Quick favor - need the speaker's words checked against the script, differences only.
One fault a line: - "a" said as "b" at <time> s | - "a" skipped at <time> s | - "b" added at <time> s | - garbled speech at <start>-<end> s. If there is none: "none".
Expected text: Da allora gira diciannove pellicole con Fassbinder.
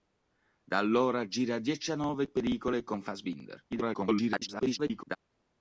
- garbled speech at 3.7-5.2 s